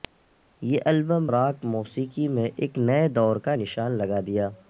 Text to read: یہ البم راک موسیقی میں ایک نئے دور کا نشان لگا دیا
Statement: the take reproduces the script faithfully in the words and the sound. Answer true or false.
true